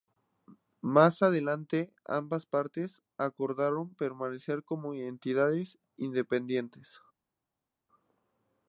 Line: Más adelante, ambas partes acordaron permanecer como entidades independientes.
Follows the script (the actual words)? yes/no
yes